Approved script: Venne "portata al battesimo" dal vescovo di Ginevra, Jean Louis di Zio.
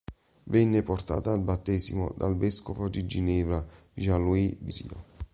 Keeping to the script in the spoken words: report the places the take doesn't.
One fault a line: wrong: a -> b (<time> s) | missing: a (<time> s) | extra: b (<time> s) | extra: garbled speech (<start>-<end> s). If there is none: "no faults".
no faults